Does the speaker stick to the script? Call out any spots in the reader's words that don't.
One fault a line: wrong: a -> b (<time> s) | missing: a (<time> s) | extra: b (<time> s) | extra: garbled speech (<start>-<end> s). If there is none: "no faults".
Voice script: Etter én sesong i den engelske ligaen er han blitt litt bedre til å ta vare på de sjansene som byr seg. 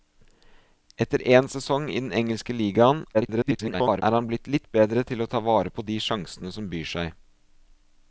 extra: garbled speech (3.1-4.0 s)